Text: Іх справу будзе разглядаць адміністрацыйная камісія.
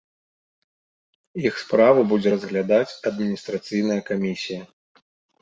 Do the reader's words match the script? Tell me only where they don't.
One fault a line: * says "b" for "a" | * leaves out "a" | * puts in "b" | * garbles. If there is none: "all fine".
all fine